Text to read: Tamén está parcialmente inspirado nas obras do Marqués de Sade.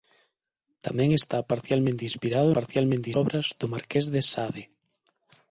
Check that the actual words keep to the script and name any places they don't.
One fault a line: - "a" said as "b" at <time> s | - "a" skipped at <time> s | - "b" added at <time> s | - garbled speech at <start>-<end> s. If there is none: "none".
- "nas" said as "parcialmente" at 2.6 s